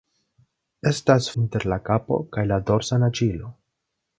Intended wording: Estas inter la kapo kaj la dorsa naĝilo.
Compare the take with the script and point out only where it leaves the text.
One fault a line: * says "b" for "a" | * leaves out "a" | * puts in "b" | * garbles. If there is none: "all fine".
all fine